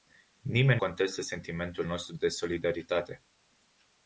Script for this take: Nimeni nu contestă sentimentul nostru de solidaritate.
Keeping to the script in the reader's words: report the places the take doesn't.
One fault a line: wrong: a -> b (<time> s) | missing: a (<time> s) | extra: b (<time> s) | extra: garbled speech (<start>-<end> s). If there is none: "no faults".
missing: nu (0.8 s)